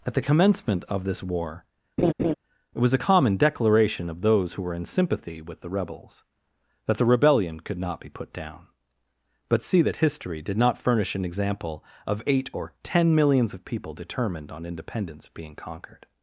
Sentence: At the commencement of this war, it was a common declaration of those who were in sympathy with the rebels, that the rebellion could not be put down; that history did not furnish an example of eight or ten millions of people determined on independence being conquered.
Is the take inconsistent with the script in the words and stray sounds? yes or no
yes